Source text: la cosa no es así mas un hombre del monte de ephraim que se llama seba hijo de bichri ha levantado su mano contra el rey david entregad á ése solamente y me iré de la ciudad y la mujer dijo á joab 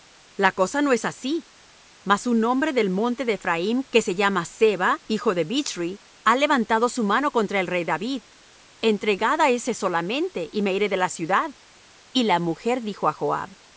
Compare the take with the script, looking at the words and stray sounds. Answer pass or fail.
pass